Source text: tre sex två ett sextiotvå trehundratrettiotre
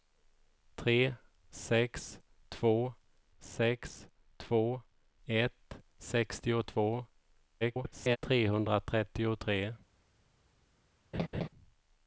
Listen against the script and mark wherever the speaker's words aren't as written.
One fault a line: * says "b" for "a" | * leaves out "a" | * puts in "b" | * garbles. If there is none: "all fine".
* puts in "sex två"
* garbles